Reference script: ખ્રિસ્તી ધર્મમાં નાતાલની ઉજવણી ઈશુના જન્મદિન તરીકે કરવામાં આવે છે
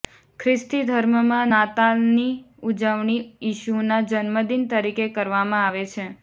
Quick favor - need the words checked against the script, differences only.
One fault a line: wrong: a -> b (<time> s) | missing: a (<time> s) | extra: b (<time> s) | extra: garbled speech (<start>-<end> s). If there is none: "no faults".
no faults